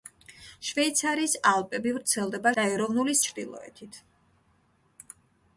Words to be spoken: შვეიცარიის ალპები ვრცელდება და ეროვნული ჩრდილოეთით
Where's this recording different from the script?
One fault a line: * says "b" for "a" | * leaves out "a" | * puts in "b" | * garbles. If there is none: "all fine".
all fine